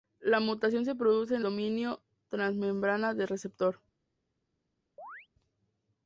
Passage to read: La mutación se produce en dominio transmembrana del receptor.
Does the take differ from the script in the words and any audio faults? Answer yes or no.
yes